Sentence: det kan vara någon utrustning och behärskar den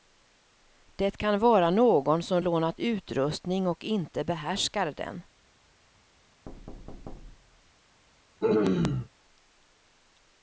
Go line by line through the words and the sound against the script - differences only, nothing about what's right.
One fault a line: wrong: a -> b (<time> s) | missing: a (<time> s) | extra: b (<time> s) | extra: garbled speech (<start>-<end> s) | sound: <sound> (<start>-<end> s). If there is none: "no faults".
extra: som lånat (2.2 s)
extra: inte (3.8 s)
sound: thud (6.5-7.7 s)
sound: throat clearing (8.4-9.1 s)